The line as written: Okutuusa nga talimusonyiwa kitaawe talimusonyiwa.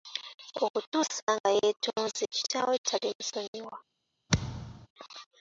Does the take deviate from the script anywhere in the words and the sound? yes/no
yes